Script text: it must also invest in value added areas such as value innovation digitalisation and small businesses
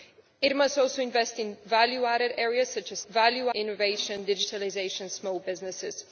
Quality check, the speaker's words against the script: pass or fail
pass